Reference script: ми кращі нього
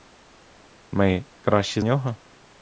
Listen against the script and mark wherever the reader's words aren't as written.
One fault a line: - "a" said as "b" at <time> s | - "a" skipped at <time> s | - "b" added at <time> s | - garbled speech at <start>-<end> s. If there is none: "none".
none